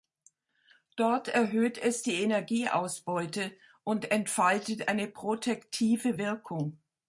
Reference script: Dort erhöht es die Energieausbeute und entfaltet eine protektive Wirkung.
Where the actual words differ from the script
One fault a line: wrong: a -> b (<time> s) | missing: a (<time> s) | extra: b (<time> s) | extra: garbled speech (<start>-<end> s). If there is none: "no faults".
no faults